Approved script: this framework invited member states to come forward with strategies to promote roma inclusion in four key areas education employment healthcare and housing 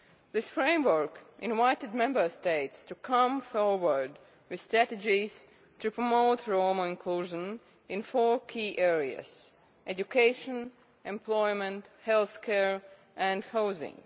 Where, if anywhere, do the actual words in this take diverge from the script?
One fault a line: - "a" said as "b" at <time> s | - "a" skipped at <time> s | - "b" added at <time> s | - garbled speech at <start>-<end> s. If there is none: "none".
none